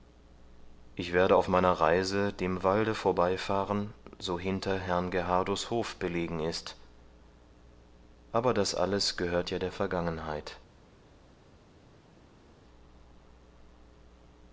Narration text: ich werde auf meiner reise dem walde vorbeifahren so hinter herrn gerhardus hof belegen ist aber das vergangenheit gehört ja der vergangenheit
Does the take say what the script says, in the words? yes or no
no